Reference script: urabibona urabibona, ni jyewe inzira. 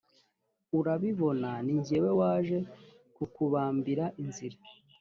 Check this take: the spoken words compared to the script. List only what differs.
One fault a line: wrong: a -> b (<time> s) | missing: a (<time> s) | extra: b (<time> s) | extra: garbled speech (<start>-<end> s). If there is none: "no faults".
missing: urabibona (1.5 s)
extra: waje kukubambira (2.2 s)